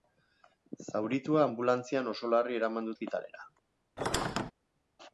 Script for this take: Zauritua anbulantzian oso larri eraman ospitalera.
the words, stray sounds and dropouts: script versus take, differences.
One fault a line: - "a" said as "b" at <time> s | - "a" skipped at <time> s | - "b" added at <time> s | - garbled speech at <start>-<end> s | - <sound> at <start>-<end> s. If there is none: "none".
- squeak at 4.0-4.5 s